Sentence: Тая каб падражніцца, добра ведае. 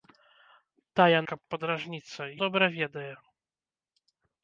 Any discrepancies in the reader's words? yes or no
no